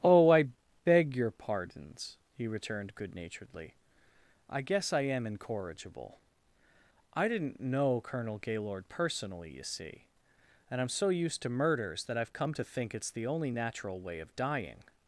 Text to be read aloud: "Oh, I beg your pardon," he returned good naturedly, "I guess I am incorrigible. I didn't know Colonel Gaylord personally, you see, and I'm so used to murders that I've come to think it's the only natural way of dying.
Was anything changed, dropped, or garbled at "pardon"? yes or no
yes